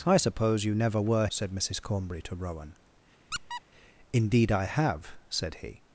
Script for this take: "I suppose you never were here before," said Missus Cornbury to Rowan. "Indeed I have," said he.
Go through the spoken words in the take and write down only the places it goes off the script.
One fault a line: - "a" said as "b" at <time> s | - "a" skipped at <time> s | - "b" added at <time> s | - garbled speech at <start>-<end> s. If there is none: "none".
- "here before" skipped at 1.3 s